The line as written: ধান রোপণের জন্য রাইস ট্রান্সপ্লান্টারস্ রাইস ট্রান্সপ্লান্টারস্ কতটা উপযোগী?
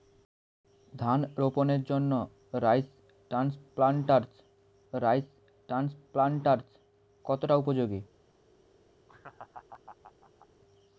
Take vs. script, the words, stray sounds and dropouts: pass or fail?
fail